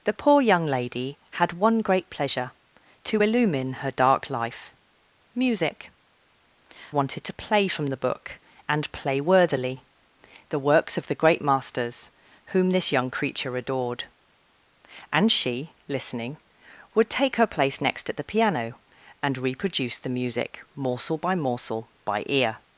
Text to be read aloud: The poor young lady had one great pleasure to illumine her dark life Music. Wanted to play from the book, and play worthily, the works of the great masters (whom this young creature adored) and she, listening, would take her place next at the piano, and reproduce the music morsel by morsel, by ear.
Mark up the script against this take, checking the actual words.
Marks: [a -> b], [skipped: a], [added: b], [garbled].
The poor young lady had one great pleasure to illumine her dark life Music. Wanted to play from the book, and play worthily, the works of the great masters (whom this young creature adored) and she, listening, would take her place next at the piano, and reproduce the music morsel by morsel, by ear.